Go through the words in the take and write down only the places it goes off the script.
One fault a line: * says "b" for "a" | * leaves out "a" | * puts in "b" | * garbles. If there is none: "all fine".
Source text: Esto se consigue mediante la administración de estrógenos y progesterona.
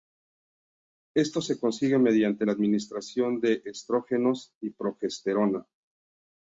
all fine